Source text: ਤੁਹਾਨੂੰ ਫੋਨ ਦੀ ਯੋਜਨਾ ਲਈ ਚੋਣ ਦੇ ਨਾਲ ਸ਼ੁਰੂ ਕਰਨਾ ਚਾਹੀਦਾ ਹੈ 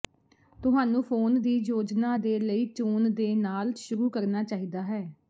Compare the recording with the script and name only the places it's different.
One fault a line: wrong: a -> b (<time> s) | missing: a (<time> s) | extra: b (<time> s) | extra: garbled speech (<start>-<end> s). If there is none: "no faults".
extra: ਦੇ (2.2 s)